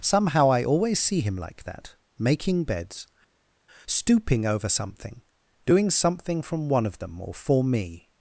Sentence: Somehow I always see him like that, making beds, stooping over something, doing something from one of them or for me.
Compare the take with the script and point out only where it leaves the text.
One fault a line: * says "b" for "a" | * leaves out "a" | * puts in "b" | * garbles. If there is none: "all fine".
all fine